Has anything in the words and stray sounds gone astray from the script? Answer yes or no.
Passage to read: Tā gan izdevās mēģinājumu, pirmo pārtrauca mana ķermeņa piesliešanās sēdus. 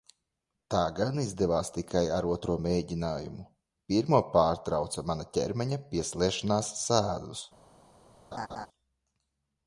yes